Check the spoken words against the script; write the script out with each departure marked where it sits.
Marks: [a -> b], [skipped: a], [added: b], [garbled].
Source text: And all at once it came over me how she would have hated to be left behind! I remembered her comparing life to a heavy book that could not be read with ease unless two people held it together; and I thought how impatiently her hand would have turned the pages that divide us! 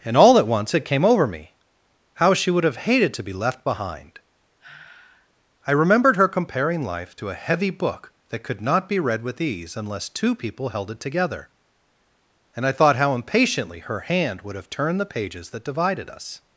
And all at once it came over me how she would have hated to be left behind! I remembered her comparing life to a heavy book that could not be read with ease unless two people held it together; and I thought how impatiently her hand would have turned the pages that [divide -> divided] us!